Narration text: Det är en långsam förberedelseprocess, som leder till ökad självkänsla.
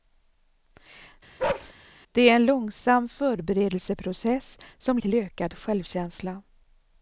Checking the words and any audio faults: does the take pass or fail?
fail